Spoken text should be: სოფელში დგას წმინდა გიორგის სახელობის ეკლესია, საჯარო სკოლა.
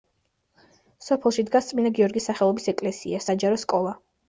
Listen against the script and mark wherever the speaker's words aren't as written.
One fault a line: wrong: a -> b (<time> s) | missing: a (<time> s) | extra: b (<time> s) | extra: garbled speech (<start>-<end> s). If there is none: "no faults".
no faults